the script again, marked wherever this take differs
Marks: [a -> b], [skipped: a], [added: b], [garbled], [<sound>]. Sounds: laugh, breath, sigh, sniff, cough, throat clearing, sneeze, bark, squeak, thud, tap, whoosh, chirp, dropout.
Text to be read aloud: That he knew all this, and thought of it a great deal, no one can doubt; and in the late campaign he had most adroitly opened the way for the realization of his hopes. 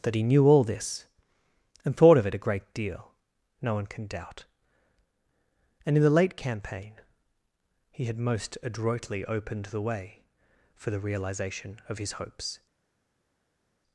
That he knew all this, and thought of it a great deal, no one can doubt; and in the late campaign he had most adroitly opened the way for the realization of his hopes.